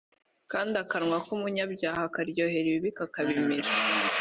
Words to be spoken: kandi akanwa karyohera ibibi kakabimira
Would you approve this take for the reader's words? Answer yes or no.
no